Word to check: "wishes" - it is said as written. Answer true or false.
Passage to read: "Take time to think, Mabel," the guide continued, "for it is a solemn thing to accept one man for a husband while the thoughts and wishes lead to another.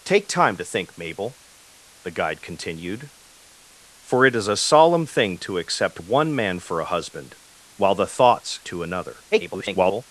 false